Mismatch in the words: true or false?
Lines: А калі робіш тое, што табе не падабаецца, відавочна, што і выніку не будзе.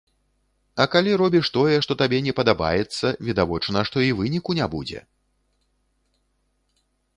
false